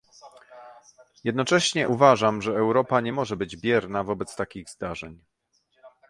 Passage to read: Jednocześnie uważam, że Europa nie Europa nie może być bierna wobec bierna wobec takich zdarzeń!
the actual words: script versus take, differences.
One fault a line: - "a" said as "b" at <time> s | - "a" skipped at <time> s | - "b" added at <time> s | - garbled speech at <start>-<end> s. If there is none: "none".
- "Europa nie" skipped at 3.1 s
- "bierna wobec" skipped at 4.3 s